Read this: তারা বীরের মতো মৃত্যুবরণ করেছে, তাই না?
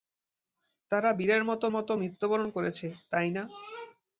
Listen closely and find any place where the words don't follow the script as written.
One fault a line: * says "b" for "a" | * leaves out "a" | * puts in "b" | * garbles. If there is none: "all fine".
* puts in "মতো"